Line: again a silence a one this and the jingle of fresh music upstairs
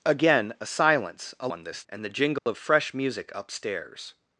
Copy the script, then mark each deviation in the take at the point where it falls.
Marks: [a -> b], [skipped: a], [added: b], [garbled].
again a silence a one this and the jingle of fresh music upstairs